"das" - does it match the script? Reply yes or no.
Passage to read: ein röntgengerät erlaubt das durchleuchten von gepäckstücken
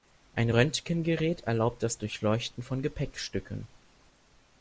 yes